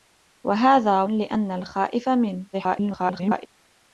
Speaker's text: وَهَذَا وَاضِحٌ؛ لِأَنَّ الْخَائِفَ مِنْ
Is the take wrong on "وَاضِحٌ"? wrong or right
wrong